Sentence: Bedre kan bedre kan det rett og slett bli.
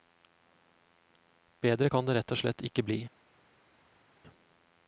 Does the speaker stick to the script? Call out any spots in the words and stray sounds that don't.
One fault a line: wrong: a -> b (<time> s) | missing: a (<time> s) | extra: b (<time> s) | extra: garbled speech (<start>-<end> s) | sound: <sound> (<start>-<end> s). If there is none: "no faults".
missing: bedre kan (2.1 s)
extra: ikke (2.7 s)